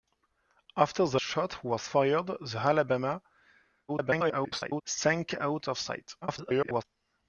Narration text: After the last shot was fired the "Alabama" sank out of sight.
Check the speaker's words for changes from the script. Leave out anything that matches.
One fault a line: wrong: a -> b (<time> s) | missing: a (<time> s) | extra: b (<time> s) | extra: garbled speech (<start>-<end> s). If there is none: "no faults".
missing: last (1.2 s)
extra: garbled speech (3.9-4.8 s)
extra: garbled speech (6.2-6.8 s)